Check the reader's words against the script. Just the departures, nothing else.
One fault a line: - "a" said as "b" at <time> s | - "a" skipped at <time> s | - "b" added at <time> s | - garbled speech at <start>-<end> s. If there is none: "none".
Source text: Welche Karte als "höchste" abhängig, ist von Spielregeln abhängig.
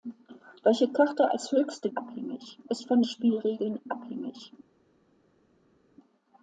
none